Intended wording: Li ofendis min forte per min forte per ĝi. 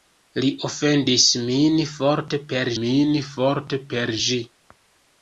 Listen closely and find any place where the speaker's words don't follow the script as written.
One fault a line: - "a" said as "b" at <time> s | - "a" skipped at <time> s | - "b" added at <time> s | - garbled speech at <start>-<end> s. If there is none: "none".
none